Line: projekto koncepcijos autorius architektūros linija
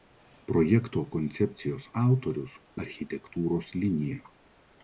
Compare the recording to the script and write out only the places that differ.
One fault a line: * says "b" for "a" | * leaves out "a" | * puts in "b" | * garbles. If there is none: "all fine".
all fine